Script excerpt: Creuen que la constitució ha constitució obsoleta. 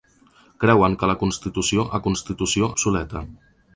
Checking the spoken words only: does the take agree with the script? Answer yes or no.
yes